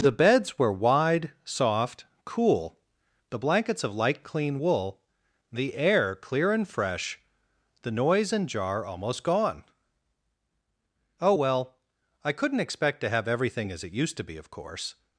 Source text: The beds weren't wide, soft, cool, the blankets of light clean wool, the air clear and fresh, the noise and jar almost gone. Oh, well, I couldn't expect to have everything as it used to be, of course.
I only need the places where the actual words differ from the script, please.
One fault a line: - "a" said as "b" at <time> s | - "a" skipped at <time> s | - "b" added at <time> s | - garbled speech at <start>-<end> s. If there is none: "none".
- "weren't" said as "were" at 0.6 s